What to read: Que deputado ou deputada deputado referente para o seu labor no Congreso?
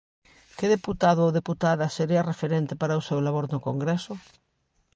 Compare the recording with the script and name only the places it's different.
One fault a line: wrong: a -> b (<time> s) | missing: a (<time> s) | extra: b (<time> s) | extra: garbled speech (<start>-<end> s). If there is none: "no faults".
wrong: deputado -> sería (2.0 s)